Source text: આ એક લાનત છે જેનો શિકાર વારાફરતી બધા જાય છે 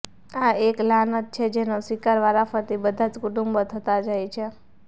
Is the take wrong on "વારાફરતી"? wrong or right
right